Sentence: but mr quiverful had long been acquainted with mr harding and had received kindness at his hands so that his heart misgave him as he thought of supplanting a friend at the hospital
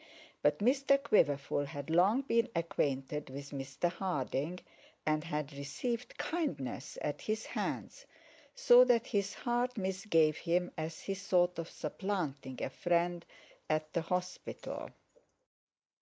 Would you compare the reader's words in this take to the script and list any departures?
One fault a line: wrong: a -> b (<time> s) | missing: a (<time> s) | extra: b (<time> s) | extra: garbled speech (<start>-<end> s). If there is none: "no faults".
no faults